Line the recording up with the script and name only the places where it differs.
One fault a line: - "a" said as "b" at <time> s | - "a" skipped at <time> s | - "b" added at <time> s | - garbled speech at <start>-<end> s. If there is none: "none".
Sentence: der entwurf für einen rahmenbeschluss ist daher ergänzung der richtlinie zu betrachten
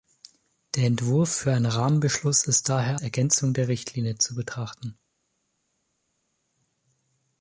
none